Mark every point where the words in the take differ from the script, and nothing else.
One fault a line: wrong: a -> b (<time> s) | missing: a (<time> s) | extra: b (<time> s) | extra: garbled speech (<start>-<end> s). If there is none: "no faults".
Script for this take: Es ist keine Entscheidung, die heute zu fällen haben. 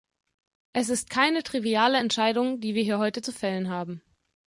extra: triviale (1.4 s)
extra: wir hier (2.7 s)